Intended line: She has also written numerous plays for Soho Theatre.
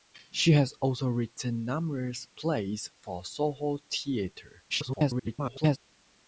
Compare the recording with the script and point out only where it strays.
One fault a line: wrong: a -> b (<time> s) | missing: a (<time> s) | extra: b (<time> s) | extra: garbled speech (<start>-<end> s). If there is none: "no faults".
extra: garbled speech (4.7-5.8 s)